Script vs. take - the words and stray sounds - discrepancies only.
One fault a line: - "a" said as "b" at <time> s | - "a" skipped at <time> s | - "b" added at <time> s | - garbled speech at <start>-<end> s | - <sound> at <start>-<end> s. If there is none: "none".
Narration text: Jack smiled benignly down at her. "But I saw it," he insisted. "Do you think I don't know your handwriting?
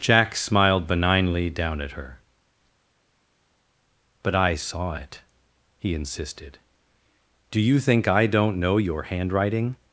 none